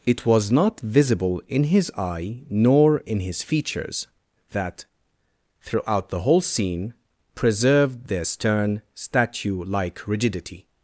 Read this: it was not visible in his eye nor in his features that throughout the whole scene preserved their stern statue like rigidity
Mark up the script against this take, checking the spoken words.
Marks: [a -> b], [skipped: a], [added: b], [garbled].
it was not visible in his eye nor in his features that throughout the whole scene preserved their stern statue like rigidity